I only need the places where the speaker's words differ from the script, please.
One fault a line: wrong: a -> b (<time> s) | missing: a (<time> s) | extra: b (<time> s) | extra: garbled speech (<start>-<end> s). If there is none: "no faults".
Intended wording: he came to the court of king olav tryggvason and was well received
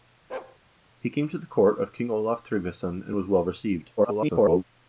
extra: garbled speech (4.0-4.6 s)